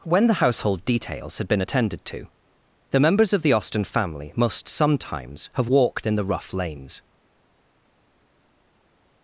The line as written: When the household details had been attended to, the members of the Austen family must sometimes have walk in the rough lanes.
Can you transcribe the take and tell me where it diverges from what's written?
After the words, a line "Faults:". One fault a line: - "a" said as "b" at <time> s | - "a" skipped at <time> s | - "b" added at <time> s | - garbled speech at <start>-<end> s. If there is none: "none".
When the household details had been attended to, the members of the Austen family must sometimes have walked in the rough lanes.
Faults:
- "walk" said as "walked" at 5.6 s